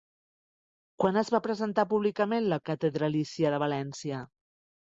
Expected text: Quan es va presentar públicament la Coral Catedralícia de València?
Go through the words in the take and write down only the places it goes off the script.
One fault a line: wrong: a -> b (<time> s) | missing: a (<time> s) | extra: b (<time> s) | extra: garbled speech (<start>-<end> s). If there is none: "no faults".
missing: Coral (2.6 s)